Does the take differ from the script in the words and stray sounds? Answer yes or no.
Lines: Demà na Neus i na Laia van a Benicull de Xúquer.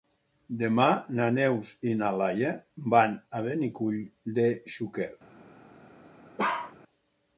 yes